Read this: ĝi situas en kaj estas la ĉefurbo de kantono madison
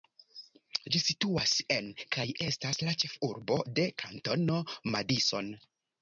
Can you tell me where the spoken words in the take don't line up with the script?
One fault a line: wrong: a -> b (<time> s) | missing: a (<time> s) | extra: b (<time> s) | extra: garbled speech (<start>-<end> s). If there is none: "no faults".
no faults